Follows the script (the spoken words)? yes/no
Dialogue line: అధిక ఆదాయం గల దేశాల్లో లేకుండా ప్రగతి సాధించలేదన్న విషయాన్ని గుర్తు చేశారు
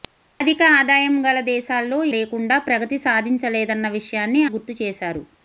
yes